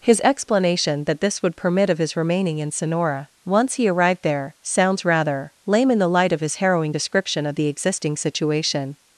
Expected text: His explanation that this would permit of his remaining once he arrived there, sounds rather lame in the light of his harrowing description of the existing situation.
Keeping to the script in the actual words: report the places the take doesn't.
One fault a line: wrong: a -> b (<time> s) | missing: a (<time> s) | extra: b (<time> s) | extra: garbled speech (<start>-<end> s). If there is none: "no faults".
extra: in Sonora (2.6 s)